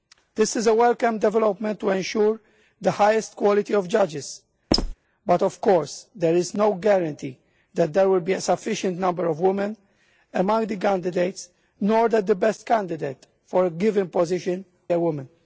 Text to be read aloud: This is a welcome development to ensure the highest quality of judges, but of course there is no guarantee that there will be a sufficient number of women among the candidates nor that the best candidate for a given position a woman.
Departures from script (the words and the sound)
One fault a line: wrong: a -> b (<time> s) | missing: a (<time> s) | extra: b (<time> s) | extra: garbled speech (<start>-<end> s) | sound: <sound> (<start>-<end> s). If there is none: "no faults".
sound: squeak (4.7-4.9 s)